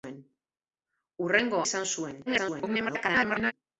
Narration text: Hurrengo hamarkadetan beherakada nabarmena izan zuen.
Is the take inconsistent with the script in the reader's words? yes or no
yes